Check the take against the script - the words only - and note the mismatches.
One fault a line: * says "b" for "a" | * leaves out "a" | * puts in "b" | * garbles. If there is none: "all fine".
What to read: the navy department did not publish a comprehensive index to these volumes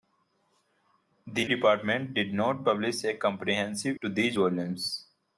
* leaves out "navy"
* leaves out "index"